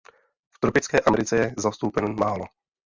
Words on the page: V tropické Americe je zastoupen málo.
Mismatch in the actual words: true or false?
false